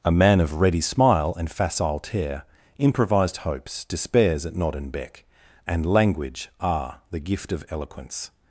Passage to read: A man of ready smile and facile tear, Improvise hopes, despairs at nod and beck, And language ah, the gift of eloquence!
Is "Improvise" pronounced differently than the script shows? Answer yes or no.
yes